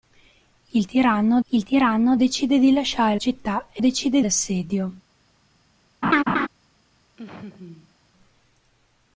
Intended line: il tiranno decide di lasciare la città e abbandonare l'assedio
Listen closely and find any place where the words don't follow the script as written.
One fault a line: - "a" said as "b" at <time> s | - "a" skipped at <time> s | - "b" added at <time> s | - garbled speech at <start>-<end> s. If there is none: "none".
- "il tiranno" added at 1.5 s
- "la" skipped at 3.2 s
- "abbandonare" said as "decide" at 3.8 s